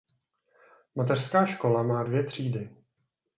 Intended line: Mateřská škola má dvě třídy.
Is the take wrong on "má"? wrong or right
right